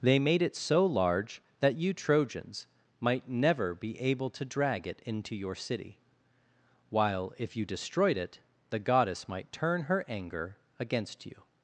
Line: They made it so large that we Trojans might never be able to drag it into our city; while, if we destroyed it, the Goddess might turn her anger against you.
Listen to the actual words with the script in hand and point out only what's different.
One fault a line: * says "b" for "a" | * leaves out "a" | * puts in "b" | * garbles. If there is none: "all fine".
* says "you" for "we"
* says "your" for "our"
* says "you" for "we"